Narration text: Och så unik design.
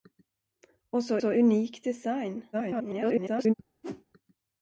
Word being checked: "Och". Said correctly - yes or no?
yes